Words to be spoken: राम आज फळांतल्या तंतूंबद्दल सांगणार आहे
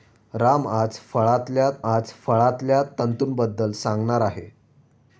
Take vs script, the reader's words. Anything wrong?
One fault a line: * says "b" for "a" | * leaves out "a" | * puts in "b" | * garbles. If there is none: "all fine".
* puts in "आज फळांतल्या"